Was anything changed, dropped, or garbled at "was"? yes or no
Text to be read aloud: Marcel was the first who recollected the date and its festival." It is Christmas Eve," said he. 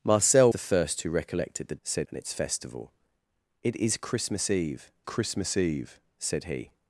yes